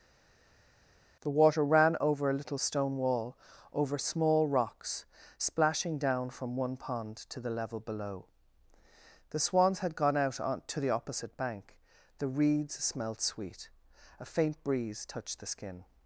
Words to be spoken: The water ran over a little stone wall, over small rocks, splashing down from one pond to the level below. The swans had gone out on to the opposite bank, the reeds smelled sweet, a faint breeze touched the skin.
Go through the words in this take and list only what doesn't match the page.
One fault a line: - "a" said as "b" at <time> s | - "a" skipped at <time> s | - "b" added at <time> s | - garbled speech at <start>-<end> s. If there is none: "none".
none